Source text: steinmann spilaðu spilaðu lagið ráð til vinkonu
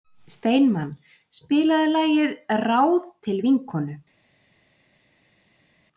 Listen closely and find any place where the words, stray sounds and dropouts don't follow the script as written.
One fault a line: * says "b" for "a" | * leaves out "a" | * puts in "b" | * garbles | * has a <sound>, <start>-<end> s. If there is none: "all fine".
* leaves out "spilaðu"